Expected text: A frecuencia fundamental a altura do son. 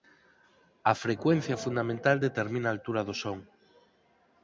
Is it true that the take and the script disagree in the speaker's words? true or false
true